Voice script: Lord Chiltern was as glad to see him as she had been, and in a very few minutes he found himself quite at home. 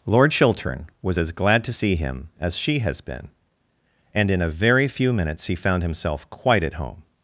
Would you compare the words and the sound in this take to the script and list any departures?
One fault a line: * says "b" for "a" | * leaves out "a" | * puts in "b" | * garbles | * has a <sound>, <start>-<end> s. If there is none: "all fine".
* says "has" for "had"